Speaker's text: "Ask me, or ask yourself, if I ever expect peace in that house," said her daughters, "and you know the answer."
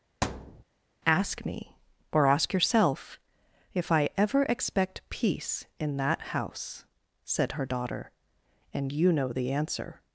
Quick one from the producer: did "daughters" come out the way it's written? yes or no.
no